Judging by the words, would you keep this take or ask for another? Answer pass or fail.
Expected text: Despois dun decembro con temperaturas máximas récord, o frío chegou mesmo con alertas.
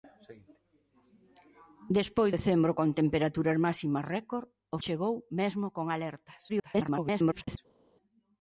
fail